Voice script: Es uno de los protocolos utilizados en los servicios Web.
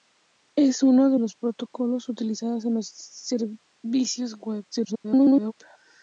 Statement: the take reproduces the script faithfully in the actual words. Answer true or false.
false